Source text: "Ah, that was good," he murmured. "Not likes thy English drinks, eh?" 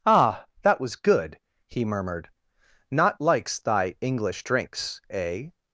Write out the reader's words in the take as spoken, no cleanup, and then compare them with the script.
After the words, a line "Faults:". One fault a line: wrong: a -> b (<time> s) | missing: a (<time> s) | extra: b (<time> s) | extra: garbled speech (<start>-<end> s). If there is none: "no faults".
"Ah, that was good," he murmured. "Not likes thy English drinks, eh?"
Faults:
no faults